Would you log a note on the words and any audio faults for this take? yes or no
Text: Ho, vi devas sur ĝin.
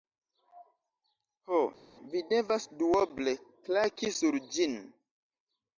yes